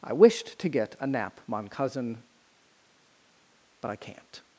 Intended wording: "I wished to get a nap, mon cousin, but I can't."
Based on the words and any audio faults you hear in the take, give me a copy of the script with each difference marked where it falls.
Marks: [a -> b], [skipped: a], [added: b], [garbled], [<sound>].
"I wished to get a nap, mon cousin, but I can't."